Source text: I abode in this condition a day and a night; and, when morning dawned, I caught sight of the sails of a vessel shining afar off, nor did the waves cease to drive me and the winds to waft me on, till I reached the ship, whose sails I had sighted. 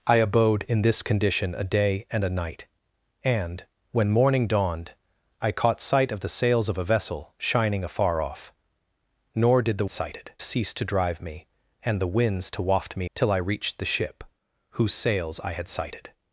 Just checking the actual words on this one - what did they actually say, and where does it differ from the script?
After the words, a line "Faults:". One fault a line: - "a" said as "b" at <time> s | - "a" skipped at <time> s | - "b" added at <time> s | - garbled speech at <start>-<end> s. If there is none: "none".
I abode in this condition a day and a night; and, when morning dawned, I caught sight of the sails of a vessel shining afar off, nor did the sighted cease to drive me and the winds to waft me till I reached the ship, whose sails I had sighted.
Faults:
- "waves" said as "sighted" at 9.9 s
- "on" skipped at 13.1 s